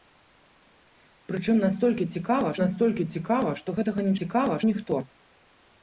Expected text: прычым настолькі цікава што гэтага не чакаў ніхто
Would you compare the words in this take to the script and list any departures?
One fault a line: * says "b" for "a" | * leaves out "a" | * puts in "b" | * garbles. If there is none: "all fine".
* puts in "настолькі цікава"
* says "цікава" for "чакаў"